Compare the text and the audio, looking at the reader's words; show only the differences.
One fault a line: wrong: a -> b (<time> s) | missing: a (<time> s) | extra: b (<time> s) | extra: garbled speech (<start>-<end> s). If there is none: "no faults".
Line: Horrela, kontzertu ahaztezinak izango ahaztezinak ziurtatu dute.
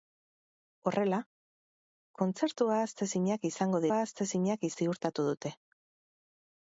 no faults